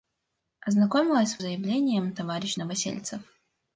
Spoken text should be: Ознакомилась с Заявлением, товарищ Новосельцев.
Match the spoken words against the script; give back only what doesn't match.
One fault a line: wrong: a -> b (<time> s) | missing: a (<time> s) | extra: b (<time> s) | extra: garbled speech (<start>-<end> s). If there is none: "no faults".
no faults